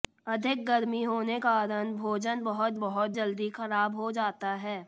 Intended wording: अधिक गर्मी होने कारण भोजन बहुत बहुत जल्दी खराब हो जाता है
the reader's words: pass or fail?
pass